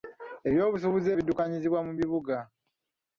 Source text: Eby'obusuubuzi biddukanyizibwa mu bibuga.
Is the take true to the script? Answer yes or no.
yes